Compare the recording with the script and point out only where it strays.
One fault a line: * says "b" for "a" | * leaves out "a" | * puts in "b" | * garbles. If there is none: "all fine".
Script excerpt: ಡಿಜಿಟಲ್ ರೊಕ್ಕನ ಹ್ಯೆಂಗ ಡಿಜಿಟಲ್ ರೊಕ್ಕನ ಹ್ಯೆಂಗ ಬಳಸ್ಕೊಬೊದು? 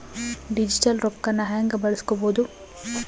* leaves out "ಡಿಜಿಟಲ್ ರೊಕ್ಕನ ಹ್ಯೆಂಗ"